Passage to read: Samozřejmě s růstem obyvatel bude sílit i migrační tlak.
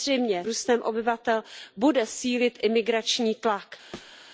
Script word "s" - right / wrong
wrong